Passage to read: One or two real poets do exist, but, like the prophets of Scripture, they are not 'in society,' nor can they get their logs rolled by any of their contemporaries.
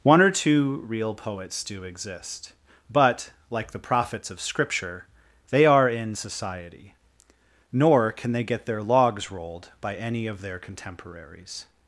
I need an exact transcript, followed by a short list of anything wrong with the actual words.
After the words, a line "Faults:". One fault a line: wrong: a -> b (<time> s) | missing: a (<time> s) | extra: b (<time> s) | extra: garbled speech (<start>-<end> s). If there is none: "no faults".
One or two real poets do exist, but, like the prophets of Scripture, they are 'in society,' nor can they get their logs rolled by any of their contemporaries.
Faults:
missing: not (5.9 s)